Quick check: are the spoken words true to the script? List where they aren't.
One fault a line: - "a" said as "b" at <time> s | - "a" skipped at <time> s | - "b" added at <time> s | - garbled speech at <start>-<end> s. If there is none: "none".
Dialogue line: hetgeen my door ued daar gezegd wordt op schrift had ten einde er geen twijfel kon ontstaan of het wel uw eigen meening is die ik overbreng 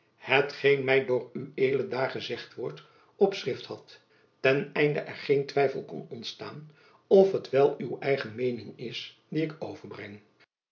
none